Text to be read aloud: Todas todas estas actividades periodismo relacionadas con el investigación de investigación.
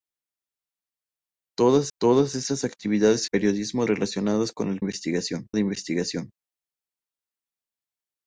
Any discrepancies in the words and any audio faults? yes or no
no